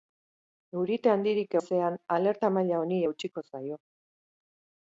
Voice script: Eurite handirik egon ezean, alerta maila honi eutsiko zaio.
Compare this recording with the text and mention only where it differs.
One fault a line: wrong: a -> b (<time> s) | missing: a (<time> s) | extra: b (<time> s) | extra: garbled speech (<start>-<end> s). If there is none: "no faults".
missing: egon (1.5 s)